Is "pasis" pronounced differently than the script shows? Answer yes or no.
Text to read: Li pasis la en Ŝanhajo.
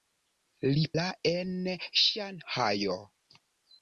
yes